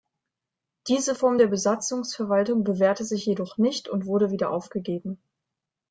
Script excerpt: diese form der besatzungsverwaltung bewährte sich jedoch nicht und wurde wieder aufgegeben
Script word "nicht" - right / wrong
right